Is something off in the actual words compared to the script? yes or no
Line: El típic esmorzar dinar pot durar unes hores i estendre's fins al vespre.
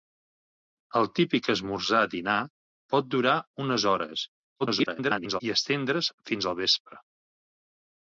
yes